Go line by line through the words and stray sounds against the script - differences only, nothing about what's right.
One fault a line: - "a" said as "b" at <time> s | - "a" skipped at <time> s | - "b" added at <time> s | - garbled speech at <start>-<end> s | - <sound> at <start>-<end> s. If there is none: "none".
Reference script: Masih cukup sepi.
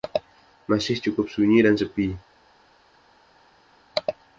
- "sunyi dan" added at 1.3 s